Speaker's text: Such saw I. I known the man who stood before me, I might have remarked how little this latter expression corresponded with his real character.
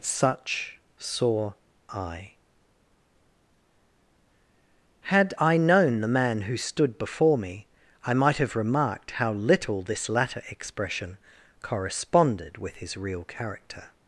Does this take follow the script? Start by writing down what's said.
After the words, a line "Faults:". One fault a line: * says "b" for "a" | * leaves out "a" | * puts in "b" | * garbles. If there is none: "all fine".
Such saw I. Had I known the man who stood before me, I might have remarked how little this latter expression corresponded with his real character.
Faults:
* puts in "Had"